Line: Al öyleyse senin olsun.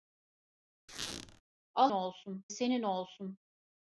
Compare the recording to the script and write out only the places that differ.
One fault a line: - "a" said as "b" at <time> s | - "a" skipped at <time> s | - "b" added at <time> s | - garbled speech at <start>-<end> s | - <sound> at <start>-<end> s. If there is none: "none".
- squeak at 0.9-1.4 s
- "öyleyse" said as "olsun" at 1.9 s